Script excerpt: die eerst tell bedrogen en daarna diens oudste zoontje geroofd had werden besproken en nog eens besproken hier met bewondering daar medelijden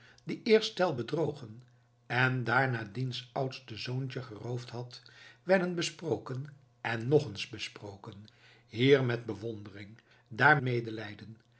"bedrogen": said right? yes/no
yes